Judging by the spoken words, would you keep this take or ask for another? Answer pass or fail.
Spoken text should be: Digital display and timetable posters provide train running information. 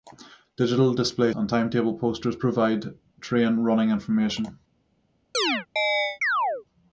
pass